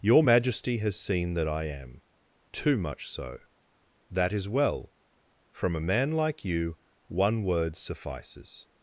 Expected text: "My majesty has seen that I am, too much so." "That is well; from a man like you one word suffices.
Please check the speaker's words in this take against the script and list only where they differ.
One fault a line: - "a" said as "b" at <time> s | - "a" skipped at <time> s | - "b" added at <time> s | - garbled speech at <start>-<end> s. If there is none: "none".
- "My" said as "Your" at 0.0 s